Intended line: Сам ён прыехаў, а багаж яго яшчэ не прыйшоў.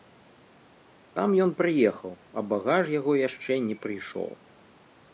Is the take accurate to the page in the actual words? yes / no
yes